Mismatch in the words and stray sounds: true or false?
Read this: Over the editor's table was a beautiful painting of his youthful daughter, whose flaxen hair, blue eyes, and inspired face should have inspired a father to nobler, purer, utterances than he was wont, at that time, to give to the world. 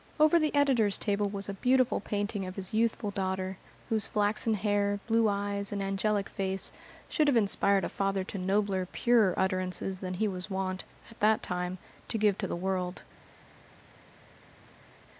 true